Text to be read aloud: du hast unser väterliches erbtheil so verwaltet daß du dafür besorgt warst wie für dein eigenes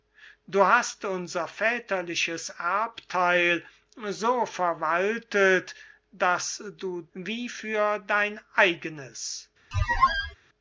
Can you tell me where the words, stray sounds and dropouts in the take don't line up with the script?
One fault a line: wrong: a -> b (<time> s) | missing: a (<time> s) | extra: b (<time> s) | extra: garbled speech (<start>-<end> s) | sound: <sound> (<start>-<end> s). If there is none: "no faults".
missing: dafür besorgt warst (7.1 s)
sound: squeak (9.7-10.3 s)